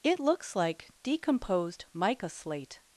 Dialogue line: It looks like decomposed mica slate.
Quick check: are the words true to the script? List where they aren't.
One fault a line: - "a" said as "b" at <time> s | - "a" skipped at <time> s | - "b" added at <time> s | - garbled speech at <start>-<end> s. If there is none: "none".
none